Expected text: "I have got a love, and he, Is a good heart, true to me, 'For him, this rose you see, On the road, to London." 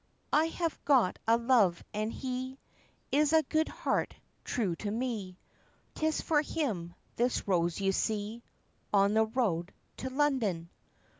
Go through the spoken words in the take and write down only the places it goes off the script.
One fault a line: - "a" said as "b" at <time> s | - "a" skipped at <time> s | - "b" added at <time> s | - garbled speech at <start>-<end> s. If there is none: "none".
- "Tis" added at 6.0 s